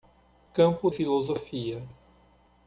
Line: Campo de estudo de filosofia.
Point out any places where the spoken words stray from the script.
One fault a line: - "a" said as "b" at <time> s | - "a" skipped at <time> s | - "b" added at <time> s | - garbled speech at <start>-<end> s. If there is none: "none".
- "de estudo de" skipped at 0.9 s